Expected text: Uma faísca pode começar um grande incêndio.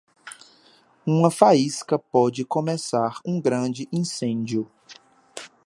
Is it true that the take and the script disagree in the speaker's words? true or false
false